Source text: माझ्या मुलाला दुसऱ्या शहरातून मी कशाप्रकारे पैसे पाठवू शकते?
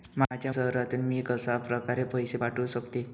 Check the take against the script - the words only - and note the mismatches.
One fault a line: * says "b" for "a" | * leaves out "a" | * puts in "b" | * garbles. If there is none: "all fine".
* leaves out "मुलाला दुसऱ्या"